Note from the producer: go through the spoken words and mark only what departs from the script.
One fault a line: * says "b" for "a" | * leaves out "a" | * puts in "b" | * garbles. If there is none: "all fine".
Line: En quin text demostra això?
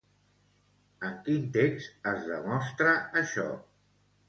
* puts in "es"